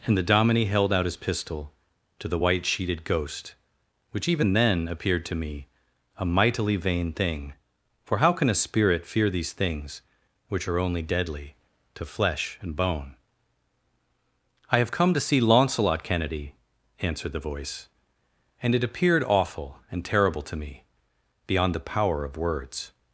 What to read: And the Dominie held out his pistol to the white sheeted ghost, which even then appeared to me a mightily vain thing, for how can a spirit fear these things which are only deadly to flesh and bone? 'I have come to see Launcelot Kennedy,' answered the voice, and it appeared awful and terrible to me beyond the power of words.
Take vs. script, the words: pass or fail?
pass